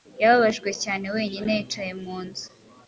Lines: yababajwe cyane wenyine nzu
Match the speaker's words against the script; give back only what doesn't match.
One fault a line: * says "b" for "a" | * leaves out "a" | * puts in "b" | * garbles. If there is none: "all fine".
* puts in "yicaye mu"